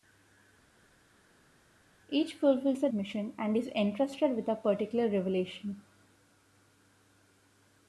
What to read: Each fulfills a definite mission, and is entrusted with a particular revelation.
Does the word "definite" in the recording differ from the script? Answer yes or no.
yes